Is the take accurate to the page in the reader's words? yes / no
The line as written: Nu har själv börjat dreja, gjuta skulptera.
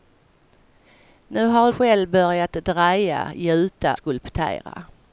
yes